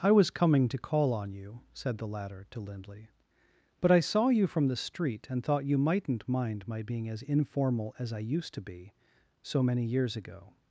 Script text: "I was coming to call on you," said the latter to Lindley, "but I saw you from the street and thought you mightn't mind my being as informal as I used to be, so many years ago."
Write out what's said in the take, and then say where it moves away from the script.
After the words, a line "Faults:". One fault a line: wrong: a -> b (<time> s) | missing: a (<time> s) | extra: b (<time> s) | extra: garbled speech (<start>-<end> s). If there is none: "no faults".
"I was coming to call on you," said the latter to Lindley, "but I saw you from the street and thought you mightn't mind my being as informal as I used to be, so many years ago."
Faults:
no faults